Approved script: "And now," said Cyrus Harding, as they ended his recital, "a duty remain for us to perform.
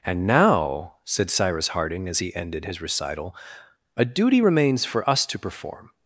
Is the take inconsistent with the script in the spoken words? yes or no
yes